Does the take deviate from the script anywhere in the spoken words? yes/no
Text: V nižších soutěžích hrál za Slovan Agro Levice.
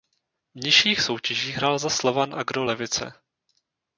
no